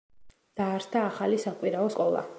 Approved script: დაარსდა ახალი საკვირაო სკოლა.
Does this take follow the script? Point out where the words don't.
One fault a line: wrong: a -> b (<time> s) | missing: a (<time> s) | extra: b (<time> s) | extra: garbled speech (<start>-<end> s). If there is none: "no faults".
no faults